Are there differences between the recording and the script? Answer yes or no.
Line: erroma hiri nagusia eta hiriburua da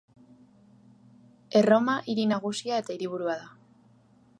no